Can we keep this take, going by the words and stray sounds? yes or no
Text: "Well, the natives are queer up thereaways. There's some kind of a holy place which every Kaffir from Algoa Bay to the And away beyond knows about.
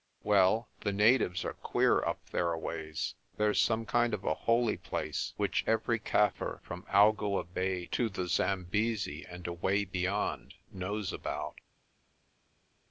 no